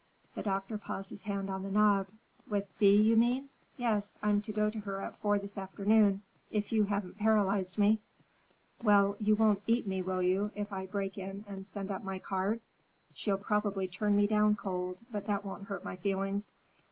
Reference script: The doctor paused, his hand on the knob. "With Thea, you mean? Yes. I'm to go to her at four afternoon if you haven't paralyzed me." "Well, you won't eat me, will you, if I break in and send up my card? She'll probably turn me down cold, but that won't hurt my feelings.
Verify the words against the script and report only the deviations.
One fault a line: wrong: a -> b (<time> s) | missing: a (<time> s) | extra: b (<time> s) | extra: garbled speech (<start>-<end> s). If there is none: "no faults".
extra: this (5.4 s)